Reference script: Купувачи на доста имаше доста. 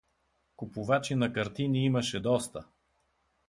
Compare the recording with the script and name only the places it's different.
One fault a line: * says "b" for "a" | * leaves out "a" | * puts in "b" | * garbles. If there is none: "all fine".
* says "картини" for "доста"